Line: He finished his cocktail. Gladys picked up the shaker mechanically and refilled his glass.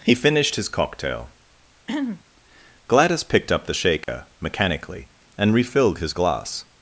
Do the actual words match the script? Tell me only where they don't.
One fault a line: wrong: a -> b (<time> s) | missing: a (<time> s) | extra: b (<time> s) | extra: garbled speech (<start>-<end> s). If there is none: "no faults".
no faults